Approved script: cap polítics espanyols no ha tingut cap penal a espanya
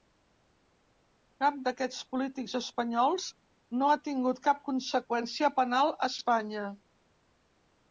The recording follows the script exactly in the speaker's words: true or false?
false